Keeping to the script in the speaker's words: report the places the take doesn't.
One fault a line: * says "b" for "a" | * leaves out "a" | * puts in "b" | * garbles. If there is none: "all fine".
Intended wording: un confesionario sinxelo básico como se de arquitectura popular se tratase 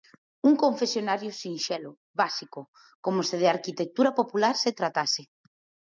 all fine